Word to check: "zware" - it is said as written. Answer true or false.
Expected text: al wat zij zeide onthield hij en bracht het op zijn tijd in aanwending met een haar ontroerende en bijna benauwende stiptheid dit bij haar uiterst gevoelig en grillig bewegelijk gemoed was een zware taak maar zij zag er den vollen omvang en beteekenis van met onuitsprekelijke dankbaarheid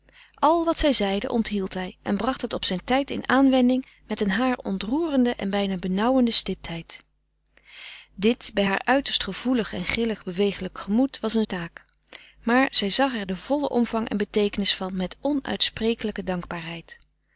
false